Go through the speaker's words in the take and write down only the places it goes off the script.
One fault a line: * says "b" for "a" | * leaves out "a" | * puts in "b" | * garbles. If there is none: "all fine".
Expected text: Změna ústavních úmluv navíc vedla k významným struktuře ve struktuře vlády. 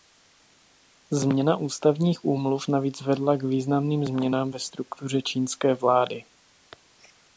* says "změnám" for "struktuře"
* puts in "čínské"